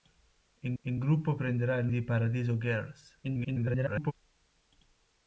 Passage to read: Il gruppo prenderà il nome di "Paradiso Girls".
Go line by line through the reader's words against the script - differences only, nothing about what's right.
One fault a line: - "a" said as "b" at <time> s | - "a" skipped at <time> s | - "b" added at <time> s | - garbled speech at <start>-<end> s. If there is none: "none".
- "il" added at 0.8 s
- "nome" skipped at 1.9 s
- garbled speech at 3.2-4.1 s